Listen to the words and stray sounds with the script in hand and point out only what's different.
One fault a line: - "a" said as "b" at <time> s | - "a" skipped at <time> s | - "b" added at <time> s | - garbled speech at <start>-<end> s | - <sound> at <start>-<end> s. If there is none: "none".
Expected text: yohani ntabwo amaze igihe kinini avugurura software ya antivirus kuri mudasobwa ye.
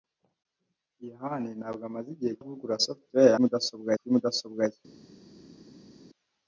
- "kinini" skipped at 2.3 s
- "antivirus" said as "mudasobwa" at 3.4 s